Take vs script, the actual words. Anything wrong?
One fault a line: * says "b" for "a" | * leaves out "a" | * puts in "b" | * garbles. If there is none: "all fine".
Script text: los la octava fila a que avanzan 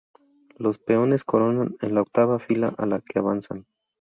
* puts in "peones coronan en"
* puts in "la"